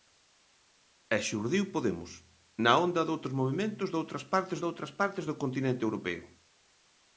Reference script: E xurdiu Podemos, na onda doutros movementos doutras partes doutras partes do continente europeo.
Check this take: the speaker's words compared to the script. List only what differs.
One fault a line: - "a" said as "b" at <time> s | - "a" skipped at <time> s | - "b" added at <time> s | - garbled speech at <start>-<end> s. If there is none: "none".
none